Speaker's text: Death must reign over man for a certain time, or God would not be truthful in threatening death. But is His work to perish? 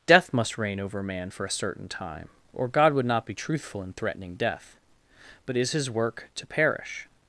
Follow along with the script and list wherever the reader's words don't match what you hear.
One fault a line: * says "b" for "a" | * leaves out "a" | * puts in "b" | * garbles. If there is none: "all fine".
all fine